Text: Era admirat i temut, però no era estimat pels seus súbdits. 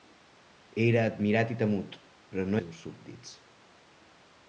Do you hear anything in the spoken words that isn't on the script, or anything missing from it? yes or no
yes